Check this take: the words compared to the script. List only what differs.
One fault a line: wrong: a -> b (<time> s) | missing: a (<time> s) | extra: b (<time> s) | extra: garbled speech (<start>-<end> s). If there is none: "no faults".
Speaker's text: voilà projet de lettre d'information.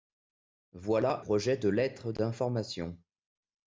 no faults